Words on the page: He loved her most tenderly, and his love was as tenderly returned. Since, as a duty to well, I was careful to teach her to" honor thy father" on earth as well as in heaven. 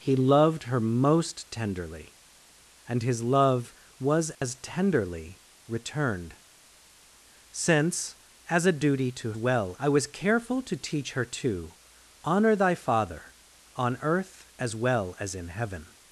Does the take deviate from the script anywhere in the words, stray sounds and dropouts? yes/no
yes